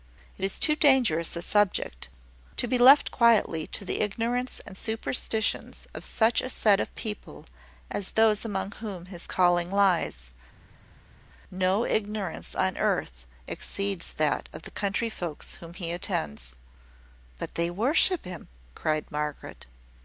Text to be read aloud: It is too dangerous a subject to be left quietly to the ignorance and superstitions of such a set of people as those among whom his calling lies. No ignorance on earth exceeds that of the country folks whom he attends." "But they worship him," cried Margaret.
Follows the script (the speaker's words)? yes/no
yes